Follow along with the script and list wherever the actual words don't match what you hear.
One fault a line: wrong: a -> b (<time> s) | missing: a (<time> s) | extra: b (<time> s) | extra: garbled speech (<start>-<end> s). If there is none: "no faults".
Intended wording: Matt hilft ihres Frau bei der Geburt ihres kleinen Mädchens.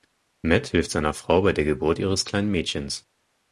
wrong: ihres -> seiner (0.9 s)